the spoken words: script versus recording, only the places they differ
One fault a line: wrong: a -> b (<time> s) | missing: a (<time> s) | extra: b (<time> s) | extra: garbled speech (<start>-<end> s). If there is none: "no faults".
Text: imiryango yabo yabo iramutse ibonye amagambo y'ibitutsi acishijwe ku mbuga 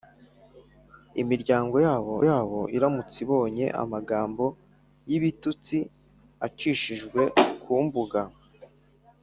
no faults